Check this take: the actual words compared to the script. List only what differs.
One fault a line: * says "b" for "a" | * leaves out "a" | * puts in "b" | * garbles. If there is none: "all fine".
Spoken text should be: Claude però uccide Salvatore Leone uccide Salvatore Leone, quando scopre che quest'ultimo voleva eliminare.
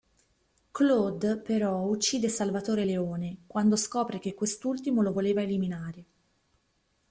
* leaves out "uccide Salvatore Leone"
* puts in "lo"